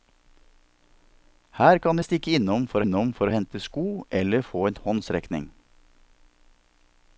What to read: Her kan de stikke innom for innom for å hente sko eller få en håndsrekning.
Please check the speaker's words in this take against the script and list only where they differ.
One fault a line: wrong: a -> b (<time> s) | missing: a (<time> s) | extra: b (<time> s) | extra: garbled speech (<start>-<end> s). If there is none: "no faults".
no faults